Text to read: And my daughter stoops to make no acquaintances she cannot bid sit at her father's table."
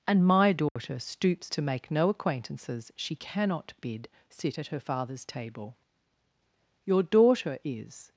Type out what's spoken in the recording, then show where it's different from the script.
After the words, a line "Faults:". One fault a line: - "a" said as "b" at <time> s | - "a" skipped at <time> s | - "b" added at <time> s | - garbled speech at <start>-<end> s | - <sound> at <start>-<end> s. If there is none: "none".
And my daughter stoops to make no acquaintances she cannot bid sit at her father's table." "Your daughter is
Faults:
- dropout at 0.7-0.8 s
- "Your daughter is" added at 6.9 s